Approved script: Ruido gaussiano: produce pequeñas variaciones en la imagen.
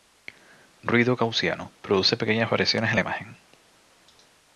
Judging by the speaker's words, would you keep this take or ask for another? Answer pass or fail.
pass